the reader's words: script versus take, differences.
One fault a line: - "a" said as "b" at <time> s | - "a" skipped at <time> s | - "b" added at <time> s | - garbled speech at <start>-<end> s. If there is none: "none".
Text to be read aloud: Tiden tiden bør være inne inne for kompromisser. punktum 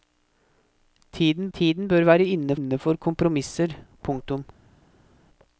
none